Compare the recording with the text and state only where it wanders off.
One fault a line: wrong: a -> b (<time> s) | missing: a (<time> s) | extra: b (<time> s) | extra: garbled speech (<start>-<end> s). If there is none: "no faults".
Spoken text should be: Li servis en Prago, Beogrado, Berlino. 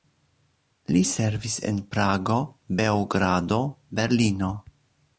no faults